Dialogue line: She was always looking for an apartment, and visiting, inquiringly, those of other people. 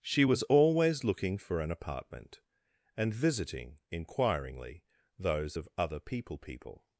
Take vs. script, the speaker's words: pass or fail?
fail